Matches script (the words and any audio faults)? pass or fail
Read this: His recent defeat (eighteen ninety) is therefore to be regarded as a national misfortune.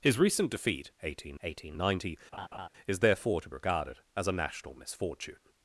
fail